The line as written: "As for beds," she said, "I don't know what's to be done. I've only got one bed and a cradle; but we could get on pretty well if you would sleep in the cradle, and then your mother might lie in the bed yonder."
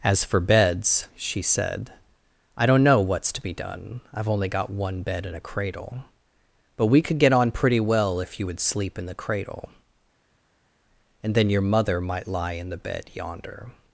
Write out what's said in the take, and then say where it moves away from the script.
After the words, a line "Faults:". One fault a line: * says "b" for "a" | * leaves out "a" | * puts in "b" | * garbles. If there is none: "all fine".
"As for beds," she said, "I don't know what's to be done. I've only got one bed and a cradle; but we could get on pretty well if you would sleep in the cradle, and then your mother might lie in the bed yonder."
Faults:
all fine